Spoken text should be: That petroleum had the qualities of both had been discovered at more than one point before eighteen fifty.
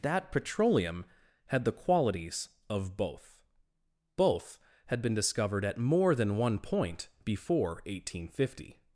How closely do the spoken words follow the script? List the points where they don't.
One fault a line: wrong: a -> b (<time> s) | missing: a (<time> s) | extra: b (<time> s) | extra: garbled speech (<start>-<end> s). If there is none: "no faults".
extra: both (4.2 s)